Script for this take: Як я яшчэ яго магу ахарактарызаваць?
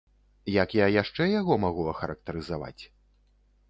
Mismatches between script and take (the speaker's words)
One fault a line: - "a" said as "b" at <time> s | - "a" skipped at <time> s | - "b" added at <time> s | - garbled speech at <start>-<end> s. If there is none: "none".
none